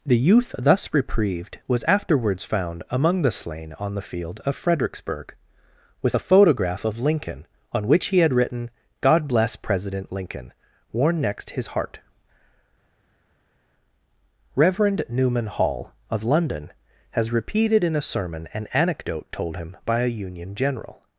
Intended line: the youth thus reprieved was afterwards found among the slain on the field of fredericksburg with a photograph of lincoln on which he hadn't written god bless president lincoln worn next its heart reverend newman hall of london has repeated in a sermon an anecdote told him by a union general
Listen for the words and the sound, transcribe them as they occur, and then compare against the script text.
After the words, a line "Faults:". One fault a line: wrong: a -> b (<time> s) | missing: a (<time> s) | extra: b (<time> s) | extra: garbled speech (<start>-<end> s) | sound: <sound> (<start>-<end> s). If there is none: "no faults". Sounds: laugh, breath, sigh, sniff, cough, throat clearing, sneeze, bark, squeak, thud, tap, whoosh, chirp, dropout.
the youth thus reprieved was afterwards found among the slain on the field of fredericksburg with a photograph of lincoln on which he had written god bless president lincoln worn next his heart reverend newman hall of london has repeated in a sermon an anecdote told him by a union general
Faults:
wrong: hadn't -> had (8.2 s)
wrong: its -> his (11.5 s)